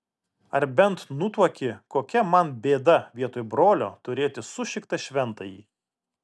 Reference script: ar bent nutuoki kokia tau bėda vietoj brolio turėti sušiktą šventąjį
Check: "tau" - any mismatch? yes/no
yes